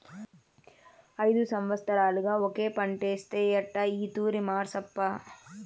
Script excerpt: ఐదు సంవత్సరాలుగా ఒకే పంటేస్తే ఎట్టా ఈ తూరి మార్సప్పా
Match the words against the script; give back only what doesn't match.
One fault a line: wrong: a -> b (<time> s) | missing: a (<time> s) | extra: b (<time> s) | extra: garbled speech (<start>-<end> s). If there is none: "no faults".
no faults